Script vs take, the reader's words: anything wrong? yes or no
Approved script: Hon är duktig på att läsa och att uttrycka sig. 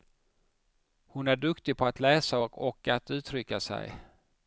no